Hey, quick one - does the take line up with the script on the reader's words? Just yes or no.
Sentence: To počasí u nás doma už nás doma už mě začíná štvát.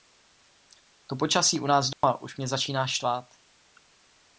no